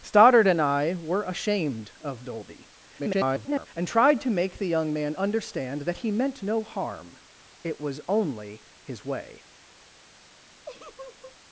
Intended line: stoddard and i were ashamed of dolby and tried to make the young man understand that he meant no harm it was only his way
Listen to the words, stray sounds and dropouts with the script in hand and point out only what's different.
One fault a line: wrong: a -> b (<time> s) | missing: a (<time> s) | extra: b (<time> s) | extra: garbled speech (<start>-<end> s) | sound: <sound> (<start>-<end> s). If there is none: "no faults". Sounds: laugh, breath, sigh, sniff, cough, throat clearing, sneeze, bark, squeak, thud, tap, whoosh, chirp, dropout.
extra: garbled speech (3.0-3.7 s)
sound: laugh (10.6-11.4 s)